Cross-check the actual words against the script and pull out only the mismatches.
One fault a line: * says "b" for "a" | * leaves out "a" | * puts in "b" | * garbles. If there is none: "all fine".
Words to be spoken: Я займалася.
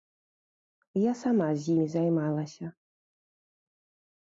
* puts in "сама з імі"